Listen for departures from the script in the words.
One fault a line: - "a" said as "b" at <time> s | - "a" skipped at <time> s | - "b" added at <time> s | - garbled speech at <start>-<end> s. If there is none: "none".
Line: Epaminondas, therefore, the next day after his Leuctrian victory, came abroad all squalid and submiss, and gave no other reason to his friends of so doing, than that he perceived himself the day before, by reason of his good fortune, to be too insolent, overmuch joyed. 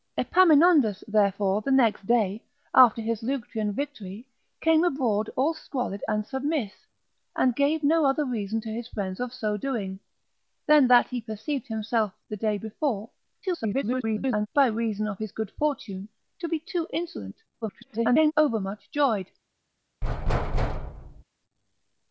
- garbled speech at 13.4-14.5 s
- garbled speech at 17.6-18.3 s